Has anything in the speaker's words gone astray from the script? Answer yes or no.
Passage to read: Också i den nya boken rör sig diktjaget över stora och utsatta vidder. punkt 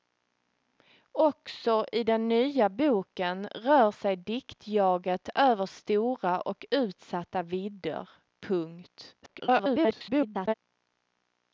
yes